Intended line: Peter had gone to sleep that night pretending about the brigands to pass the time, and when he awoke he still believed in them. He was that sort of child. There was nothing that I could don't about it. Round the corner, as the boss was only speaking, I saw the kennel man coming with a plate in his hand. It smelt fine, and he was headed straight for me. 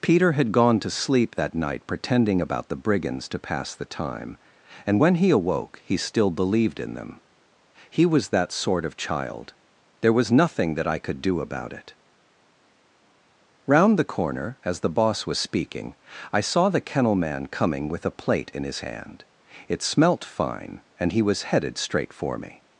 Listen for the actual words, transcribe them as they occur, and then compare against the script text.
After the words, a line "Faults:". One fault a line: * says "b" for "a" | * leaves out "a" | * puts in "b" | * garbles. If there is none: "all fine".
Peter had gone to sleep that night pretending about the brigands to pass the time, and when he awoke he still believed in them. He was that sort of child. There was nothing that I could do about it. Round the corner, as the boss was speaking, I saw the kennel man coming with a plate in his hand. It smelt fine, and he was headed straight for me.
Faults:
* says "do" for "don't"
* leaves out "only"